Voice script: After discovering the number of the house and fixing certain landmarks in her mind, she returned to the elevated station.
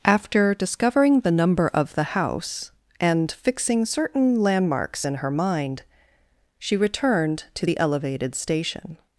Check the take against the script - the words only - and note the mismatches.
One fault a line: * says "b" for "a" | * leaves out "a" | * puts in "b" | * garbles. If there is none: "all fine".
all fine